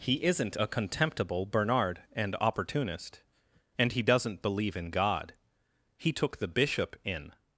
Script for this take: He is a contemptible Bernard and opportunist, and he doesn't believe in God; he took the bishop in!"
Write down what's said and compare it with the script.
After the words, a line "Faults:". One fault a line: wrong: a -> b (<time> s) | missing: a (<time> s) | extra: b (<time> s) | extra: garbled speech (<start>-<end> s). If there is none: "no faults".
He isn't a contemptible Bernard and opportunist, and he doesn't believe in God; he took the bishop in!"
Faults:
wrong: is -> isn't (0.2 s)